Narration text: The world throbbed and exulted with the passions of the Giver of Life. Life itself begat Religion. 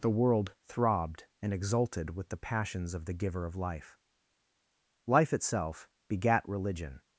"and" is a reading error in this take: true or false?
false